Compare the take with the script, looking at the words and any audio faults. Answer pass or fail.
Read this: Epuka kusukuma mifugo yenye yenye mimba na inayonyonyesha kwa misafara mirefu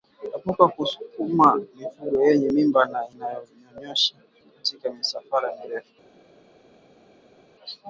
fail